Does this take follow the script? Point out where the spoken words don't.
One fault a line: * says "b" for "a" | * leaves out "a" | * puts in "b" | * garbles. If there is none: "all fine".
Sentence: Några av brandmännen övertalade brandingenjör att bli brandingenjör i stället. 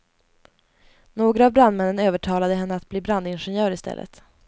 * says "henne" for "brandingenjör"